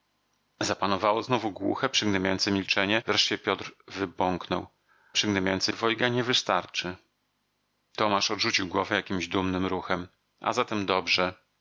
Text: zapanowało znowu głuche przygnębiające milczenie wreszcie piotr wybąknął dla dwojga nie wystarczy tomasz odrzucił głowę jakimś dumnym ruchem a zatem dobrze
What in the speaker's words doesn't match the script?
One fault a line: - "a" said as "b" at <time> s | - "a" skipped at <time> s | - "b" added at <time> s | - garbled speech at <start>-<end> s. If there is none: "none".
- "dla" said as "przygnębiające" at 5.1 s